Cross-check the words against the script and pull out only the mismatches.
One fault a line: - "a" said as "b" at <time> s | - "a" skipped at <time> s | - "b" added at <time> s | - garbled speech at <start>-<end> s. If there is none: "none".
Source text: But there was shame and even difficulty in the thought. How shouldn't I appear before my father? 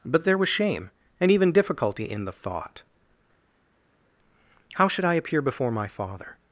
- "shouldn't" said as "should" at 4.9 s